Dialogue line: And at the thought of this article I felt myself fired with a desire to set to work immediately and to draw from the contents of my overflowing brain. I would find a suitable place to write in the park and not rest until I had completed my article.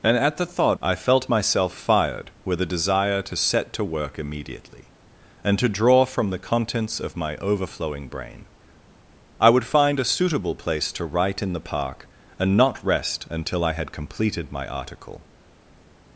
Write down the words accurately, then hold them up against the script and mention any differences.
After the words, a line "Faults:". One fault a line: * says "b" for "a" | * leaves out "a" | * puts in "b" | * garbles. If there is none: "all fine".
And at the thought I felt myself fired with a desire to set to work immediately and to draw from the contents of my overflowing brain. I would find a suitable place to write in the park and not rest until I had completed my article.
Faults:
* leaves out "of this article"